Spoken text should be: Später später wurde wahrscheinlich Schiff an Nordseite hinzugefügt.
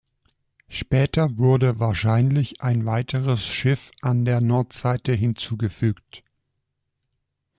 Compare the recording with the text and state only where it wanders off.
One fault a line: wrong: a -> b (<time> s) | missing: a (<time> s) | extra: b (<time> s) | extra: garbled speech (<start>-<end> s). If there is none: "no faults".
missing: später (1.4 s)
extra: ein weiteres (2.6 s)
extra: der (4.2 s)